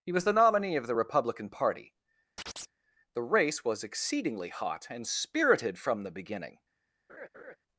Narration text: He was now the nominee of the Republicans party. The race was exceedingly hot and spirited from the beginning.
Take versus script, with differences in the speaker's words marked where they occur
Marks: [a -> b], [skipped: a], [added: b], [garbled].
He was [skipped: now] the nominee of the [Republicans -> Republican] party. The race was exceedingly hot and spirited from the beginning.